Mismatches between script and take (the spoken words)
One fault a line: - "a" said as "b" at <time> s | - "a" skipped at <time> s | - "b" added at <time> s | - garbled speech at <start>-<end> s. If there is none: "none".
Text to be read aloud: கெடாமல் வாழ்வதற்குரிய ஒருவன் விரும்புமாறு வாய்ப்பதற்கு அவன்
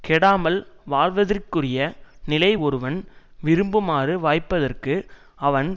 - "நிலை" added at 2.2 s